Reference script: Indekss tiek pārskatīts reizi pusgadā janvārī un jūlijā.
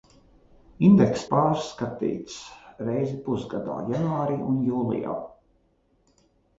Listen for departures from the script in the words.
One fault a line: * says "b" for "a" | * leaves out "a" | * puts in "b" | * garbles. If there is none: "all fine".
* leaves out "tiek"